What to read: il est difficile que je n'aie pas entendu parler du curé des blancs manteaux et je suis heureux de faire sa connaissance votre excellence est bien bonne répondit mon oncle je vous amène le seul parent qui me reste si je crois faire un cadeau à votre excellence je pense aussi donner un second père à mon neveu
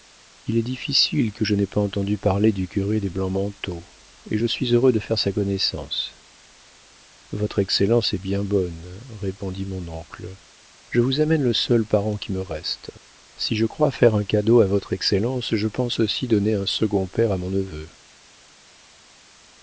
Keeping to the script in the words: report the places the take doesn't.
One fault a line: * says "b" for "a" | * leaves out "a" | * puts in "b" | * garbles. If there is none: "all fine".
all fine